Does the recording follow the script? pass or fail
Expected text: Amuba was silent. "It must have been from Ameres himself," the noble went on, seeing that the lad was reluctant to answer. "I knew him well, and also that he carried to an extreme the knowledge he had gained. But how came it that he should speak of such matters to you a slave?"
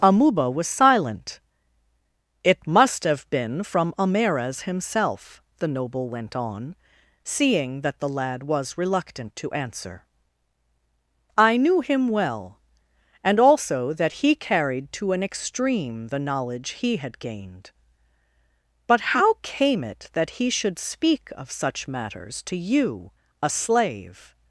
pass